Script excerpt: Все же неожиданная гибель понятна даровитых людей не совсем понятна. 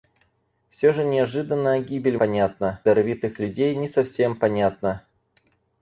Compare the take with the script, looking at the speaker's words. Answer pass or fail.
pass